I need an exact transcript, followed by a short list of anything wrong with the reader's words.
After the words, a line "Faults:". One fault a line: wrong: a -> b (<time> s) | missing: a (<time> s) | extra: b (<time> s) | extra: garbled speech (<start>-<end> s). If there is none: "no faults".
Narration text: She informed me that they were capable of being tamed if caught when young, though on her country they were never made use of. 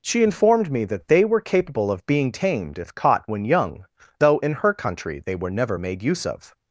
She informed me that they were capable of being tamed if caught when young, though in her country they were never made use of.
Faults:
wrong: on -> in (4.4 s)